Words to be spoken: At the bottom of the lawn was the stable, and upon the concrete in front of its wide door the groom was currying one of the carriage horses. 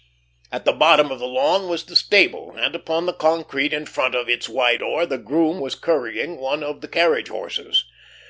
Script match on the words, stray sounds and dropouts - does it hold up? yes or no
yes